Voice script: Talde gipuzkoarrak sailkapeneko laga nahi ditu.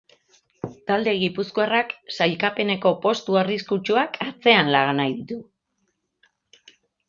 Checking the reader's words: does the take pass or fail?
fail